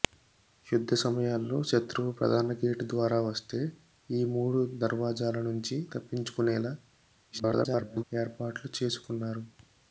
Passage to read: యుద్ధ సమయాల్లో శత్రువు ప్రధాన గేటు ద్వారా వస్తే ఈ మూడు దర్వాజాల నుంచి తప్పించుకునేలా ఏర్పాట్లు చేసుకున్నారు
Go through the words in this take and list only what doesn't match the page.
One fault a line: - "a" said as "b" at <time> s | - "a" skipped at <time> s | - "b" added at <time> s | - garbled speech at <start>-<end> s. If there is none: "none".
- garbled speech at 7.3-8.0 s